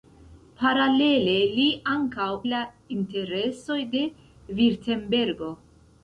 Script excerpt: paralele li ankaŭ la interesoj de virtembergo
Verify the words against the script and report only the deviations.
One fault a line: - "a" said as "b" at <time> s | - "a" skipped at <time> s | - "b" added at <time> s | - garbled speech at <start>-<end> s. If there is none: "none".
none